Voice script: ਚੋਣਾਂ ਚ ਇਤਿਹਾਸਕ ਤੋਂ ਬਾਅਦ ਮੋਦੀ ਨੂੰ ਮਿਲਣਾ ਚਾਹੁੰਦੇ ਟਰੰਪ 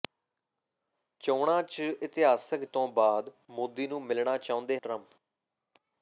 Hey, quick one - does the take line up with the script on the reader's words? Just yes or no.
yes